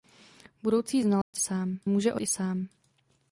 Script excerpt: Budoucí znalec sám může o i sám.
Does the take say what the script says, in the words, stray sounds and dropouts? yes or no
no